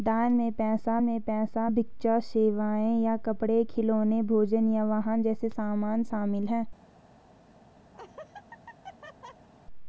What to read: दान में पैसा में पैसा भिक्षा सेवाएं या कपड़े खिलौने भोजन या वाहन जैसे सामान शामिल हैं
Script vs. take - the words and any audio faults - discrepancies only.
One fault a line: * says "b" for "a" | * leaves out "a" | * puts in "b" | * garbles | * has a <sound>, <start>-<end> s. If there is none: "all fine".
* has a laugh, 7.9-9.5 s